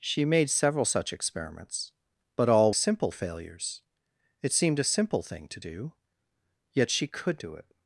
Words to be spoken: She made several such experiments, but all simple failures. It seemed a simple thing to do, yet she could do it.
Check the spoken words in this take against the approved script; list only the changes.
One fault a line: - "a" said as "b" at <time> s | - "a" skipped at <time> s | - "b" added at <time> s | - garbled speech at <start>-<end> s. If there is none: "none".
none